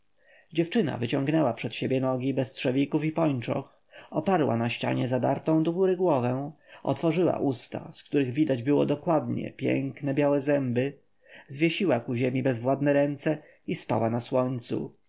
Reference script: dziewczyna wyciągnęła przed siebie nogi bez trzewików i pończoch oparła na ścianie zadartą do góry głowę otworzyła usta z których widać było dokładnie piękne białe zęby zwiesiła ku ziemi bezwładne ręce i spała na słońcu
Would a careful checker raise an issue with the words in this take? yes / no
no